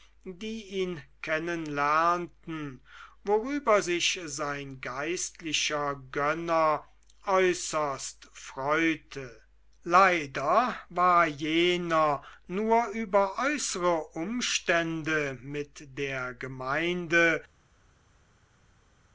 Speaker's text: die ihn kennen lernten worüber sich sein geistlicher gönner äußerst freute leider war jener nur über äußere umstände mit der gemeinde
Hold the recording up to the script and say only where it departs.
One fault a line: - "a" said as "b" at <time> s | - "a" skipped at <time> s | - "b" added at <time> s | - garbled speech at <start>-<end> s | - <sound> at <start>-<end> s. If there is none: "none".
none